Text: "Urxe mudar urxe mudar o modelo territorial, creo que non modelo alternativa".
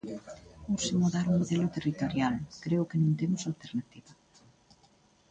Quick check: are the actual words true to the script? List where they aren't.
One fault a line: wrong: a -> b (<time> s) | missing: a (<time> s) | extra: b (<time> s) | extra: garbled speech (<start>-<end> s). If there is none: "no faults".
missing: urxe mudar (1.2 s)
wrong: modelo -> temos (3.2 s)